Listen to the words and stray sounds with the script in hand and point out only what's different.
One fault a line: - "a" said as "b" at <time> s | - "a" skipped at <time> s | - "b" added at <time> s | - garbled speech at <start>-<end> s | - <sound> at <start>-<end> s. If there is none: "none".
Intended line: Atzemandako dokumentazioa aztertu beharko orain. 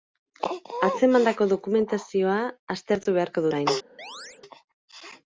- chirp at 4.0-4.4 s